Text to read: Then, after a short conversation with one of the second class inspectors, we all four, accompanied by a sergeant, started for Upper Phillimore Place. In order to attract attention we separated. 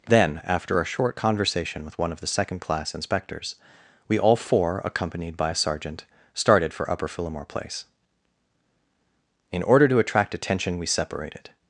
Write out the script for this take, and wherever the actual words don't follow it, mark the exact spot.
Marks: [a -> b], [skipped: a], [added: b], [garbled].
Then, after a short conversation with one of the second class inspectors, we all four, accompanied by a sergeant, started for Upper Phillimore Place. In order to attract attention we separated.